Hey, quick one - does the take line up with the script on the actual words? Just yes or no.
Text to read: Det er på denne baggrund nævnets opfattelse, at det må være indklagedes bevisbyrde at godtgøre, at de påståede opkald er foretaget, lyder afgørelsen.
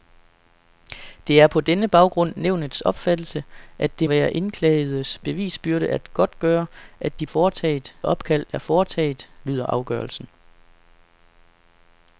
no